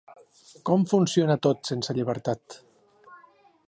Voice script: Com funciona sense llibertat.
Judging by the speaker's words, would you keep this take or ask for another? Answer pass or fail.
fail